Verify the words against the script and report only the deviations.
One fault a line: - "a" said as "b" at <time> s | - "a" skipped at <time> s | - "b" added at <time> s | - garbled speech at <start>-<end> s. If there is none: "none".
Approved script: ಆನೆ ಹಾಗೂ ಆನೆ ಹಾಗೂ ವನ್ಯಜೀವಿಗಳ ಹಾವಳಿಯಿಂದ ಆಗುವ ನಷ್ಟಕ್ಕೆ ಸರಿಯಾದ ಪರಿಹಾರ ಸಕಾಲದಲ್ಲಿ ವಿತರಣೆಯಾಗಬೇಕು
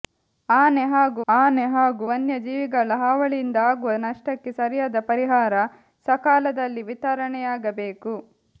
none